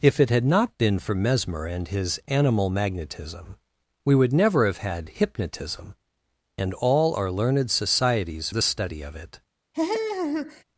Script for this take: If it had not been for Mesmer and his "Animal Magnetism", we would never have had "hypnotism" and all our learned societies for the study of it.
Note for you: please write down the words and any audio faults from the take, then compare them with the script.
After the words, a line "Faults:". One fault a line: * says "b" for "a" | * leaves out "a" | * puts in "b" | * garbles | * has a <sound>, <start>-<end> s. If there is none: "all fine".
If it had not been for Mesmer and his "Animal Magnetism", we would never have had "hypnotism" and all our learned societies the study of it.
Faults:
* leaves out "for"
* has a laugh, 9.7-10.6 s